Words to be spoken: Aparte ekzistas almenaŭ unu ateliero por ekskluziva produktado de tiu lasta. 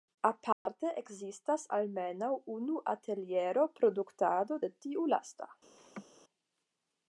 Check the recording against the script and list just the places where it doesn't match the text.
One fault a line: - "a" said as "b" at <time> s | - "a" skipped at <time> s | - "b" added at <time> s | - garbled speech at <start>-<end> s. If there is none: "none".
- "por ekskluziva" skipped at 3.7 s